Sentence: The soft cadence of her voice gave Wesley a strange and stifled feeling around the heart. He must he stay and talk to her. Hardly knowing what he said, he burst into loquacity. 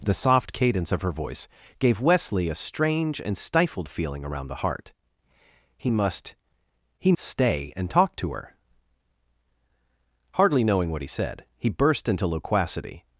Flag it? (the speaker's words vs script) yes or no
no